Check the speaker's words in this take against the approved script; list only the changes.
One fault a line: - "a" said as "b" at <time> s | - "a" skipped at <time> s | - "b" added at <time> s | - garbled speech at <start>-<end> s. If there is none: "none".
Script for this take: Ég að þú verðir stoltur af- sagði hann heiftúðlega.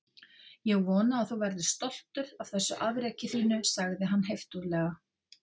- "vona" added at 0.8 s
- "þessu afreki þínu" added at 2.5 s